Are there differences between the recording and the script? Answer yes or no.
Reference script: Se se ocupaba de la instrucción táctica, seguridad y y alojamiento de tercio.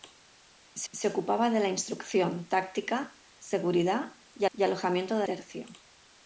no